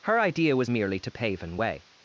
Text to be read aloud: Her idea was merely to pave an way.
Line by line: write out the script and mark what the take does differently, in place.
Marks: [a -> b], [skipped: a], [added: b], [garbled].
Her idea was merely to pave an way.